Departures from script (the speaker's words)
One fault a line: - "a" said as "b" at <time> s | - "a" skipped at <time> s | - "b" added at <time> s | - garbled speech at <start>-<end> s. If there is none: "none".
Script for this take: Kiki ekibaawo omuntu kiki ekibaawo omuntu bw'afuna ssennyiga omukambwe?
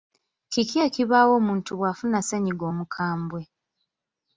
- "kiki ekibaawo omuntu" skipped at 1.7 s